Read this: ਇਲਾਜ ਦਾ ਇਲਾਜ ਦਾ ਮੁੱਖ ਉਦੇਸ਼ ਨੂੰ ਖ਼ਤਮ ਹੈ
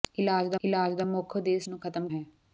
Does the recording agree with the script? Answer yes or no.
yes